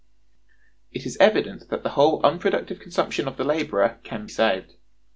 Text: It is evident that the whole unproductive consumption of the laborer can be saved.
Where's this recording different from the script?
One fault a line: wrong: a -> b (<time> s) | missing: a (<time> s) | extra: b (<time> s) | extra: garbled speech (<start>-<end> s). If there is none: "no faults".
missing: be (4.3 s)